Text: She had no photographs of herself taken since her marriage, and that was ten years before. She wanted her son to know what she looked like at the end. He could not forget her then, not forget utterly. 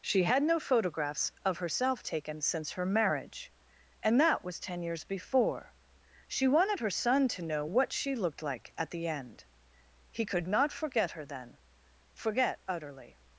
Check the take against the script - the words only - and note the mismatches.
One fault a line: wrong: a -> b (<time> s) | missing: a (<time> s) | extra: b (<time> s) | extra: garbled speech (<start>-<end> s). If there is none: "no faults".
missing: not (11.6 s)